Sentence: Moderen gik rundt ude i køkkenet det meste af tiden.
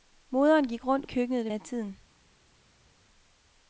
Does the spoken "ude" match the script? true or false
false